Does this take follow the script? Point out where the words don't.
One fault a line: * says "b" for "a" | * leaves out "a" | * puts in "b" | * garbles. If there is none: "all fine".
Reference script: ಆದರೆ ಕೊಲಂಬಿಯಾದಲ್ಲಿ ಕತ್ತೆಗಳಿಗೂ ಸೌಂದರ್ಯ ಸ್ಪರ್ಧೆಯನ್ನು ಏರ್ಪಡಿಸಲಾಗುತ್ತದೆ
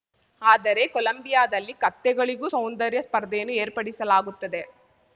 all fine